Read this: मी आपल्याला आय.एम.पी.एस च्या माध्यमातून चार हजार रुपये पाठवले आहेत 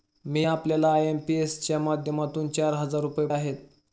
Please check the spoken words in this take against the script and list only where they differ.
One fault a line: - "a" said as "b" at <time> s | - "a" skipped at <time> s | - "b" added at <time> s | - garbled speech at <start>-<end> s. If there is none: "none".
- "पाठवले" skipped at 3.3 s